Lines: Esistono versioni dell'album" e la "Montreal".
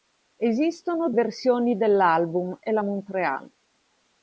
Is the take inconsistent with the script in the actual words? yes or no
no